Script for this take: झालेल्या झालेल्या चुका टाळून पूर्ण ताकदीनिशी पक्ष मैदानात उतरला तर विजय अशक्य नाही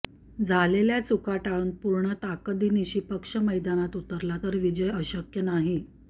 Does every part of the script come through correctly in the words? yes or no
no